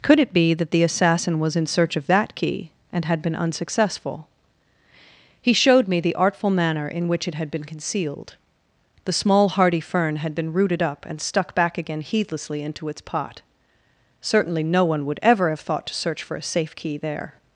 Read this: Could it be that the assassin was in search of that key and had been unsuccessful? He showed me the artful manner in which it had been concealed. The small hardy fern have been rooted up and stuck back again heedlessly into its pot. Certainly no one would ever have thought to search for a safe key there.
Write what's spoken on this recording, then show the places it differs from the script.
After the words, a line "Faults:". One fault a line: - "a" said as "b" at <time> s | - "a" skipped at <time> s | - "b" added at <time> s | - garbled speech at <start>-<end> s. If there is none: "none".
Could it be that the assassin was in search of that key and had been unsuccessful? He showed me the artful manner in which it had been concealed. The small hardy fern had been rooted up and stuck back again heedlessly into its pot. Certainly no one would ever have thought to search for a safe key there.
Faults:
- "have" said as "had" at 10.2 s